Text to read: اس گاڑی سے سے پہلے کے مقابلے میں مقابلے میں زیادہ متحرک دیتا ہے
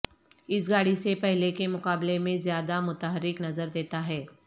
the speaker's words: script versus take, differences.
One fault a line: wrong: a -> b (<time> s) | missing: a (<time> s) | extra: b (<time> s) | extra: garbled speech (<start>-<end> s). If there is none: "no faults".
missing: سے (1.1 s)
missing: مقابلے میں (2.4 s)
extra: نظر (3.4 s)